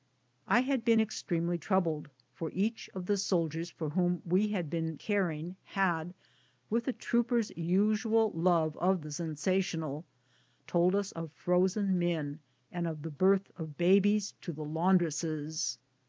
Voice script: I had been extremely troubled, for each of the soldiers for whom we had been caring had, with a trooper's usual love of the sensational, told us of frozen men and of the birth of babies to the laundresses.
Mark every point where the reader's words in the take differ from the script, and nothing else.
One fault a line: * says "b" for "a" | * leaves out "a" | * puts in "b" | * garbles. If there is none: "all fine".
all fine